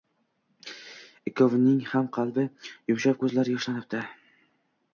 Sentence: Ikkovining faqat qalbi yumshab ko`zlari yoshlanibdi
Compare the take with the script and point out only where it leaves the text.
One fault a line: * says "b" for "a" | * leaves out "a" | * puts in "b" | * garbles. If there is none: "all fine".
* says "ham" for "faqat"